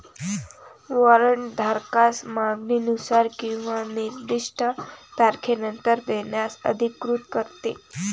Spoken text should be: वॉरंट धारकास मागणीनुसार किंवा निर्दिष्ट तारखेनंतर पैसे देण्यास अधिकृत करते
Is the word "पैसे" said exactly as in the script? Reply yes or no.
no